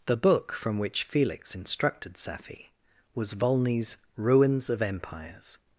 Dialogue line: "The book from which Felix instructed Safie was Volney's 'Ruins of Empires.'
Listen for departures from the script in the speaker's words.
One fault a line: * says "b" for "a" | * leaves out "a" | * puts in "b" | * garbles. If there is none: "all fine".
all fine